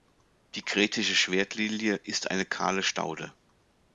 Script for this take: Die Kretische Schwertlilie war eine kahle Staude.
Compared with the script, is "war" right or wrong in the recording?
wrong